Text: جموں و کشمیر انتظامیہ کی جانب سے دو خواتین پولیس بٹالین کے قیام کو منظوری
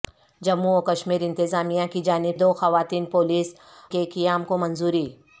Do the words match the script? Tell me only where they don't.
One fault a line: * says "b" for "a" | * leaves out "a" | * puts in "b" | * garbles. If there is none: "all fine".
* leaves out "سے"
* leaves out "بٹالین"